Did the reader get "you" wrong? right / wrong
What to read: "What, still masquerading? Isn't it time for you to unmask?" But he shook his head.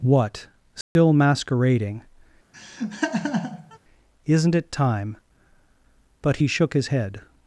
wrong